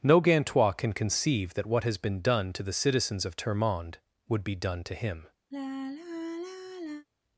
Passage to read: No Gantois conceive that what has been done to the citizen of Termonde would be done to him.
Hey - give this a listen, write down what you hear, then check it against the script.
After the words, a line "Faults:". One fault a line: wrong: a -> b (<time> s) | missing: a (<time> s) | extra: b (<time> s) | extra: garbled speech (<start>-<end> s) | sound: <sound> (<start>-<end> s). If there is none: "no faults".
No Gantois can conceive that what has been done to the citizens of Termonde would be done to him.
Faults:
extra: can (0.7 s)
wrong: citizen -> citizens (2.7 s)
sound: sigh (5.5-7.1 s)